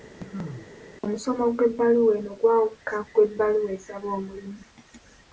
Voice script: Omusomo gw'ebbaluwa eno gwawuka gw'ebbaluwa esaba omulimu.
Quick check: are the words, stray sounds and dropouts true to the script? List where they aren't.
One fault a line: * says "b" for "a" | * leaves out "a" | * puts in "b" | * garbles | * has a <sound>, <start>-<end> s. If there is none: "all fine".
* has a cough, 0.2-0.7 s